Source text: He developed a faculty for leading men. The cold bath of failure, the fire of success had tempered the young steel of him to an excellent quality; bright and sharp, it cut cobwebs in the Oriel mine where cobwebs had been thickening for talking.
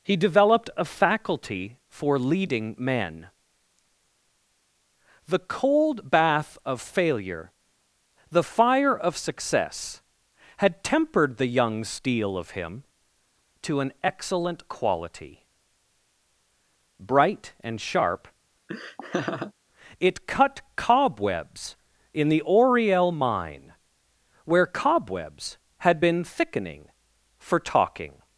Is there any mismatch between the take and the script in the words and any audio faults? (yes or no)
yes